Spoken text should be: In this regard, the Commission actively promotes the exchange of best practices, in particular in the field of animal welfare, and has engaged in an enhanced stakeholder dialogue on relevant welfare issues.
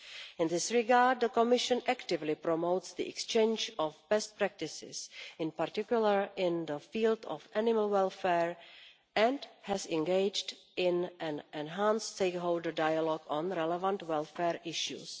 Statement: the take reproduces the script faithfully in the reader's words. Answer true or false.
true